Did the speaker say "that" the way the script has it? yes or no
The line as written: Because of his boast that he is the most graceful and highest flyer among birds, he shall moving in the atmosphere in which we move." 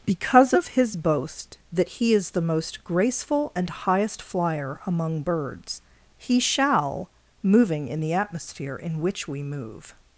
yes